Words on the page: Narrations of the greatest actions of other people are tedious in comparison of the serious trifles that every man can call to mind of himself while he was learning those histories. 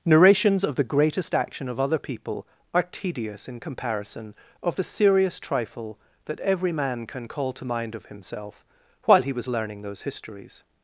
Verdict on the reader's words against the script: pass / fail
fail